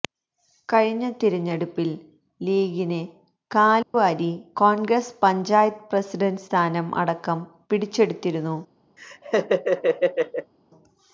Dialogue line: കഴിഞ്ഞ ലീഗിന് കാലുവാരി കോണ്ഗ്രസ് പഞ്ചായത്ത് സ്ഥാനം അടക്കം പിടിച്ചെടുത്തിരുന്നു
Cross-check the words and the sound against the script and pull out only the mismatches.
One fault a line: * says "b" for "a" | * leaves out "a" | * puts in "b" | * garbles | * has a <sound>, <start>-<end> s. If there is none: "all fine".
* puts in "തിരഞ്ഞെടുപ്പില്"
* has a dropout, 3.8-3.9 s
* puts in "പ്രസിഡന്റ്"
* has a laugh, 9.0-10.5 s